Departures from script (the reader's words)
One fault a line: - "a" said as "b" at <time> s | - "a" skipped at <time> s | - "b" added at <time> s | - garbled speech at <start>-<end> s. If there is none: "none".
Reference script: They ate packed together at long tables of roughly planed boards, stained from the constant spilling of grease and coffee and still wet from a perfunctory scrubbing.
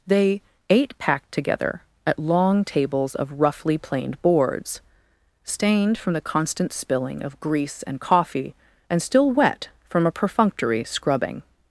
none